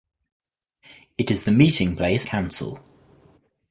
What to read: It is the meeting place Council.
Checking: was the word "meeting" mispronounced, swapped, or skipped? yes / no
no